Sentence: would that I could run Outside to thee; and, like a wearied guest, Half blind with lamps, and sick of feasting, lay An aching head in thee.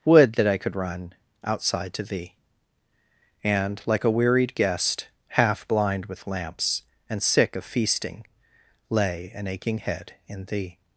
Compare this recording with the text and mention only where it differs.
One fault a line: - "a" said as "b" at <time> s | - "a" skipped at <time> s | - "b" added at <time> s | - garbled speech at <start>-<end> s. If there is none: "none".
none